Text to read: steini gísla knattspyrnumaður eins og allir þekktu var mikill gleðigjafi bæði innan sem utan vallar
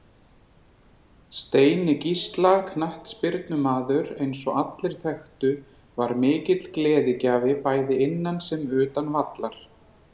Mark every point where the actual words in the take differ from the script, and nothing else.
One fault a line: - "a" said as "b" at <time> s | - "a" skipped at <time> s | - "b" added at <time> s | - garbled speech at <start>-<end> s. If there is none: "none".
none